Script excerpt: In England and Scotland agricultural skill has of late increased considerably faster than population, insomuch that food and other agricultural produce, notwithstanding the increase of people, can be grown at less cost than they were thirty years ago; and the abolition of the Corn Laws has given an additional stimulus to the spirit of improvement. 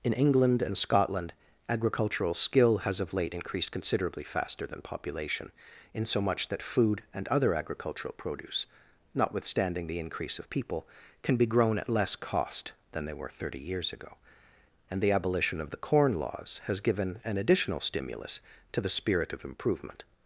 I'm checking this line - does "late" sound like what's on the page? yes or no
yes